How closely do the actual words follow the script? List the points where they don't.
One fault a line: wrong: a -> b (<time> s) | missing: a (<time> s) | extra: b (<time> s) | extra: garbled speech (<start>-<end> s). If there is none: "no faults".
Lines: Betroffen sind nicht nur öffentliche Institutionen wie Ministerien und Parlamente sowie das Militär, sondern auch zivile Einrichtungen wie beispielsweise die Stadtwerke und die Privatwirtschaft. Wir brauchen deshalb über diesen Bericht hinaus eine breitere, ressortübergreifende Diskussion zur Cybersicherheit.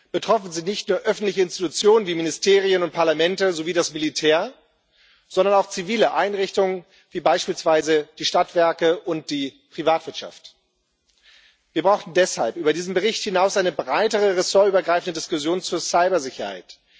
no faults